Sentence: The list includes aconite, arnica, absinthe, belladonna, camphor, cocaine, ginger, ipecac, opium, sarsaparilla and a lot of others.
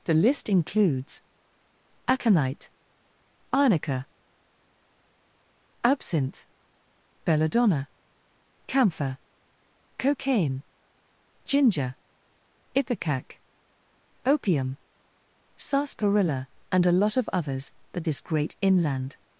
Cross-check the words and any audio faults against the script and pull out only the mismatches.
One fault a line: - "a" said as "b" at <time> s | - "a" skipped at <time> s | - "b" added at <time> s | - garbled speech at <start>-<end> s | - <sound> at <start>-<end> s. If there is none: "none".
- "But this great inland" added at 17.9 s